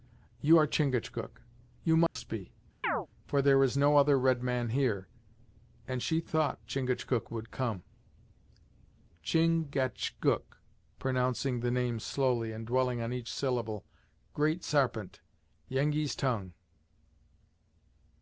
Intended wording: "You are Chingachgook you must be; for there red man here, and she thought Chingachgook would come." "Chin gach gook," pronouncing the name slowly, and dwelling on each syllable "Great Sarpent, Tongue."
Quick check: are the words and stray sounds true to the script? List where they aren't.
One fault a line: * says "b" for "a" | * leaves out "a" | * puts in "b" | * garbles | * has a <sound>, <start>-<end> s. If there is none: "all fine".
* has a dropout, 2.1-2.2 s
* has a chirp, 2.8-3.1 s
* puts in "is no other"
* puts in "Yengeese"